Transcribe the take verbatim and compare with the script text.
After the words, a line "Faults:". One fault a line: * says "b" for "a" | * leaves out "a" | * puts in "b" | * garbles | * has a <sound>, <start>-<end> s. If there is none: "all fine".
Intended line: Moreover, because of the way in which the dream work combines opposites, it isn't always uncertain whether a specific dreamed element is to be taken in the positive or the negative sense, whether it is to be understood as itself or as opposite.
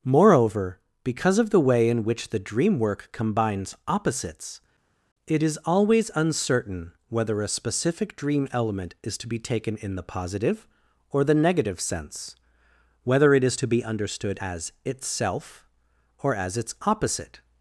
Moreover, because of the way in which the dream work combines opposites, it is always uncertain whether a specific dream element is to be taken in the positive or the negative sense, whether it is to be understood as itself or as its opposite.
Faults:
* says "is" for "isn't"
* says "dream" for "dreamed"
* puts in "its"